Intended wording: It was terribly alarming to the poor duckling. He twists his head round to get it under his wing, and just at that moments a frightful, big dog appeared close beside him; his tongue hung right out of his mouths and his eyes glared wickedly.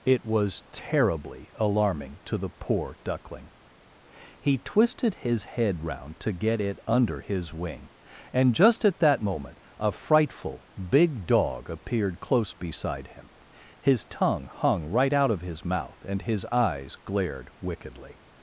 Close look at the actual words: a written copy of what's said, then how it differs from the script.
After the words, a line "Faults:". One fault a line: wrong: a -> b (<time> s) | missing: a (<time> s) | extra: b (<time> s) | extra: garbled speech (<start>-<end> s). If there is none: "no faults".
It was terribly alarming to the poor duckling. He twisted his head round to get it under his wing, and just at that moment a frightful, big dog appeared close beside him; his tongue hung right out of his mouth and his eyes glared wickedly.
Faults:
wrong: twists -> twisted (4.6 s)
wrong: moments -> moment (9.2 s)
wrong: mouths -> mouth (15.6 s)